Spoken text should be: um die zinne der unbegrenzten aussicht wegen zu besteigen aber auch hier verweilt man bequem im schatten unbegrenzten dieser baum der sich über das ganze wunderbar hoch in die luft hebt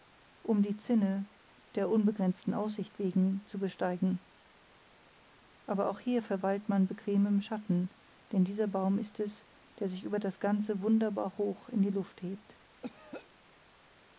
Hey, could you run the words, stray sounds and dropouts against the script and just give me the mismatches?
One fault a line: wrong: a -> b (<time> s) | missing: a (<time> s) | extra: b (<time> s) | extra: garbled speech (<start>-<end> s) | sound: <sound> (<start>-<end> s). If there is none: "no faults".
wrong: unbegrenzten -> denn (8.3 s)
extra: ist es (9.0 s)
sound: throat clearing (12.8-13.3 s)